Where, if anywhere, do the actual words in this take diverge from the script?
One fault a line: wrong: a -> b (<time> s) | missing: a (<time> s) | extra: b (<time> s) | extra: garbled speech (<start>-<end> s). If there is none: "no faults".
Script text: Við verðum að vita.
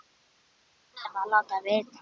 extra: láta (1.3 s)